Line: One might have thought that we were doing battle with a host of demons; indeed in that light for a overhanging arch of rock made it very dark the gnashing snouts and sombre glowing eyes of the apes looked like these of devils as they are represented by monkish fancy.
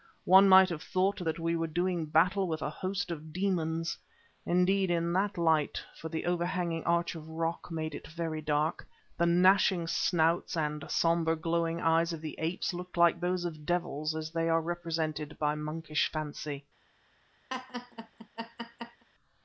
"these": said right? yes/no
no